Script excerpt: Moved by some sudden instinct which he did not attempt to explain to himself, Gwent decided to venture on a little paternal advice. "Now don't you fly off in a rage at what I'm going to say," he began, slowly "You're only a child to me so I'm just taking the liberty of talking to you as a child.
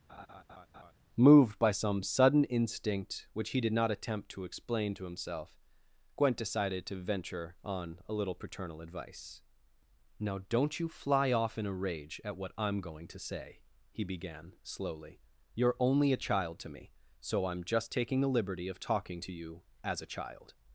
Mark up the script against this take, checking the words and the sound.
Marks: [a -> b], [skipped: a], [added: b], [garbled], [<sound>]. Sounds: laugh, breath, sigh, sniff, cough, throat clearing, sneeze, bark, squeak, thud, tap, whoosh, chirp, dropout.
[laugh] Moved by some sudden instinct which he did not attempt to explain to himself, Gwent decided to venture on a little paternal advice. "Now don't you fly off in a rage at what I'm going to say," he began, slowly "You're only a child to me so I'm just taking the liberty of talking to you as a child.